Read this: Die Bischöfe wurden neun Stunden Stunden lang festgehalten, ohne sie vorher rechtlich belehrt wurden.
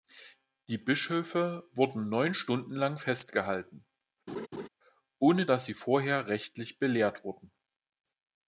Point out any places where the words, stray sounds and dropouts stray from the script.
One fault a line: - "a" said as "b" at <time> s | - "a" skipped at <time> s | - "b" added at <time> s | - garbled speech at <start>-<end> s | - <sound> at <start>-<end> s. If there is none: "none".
- "Stunden" skipped at 2.7 s
- laugh at 4.3-4.7 s
- "dass" added at 5.4 s